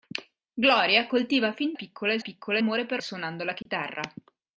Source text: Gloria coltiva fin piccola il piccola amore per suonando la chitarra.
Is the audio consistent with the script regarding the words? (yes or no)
yes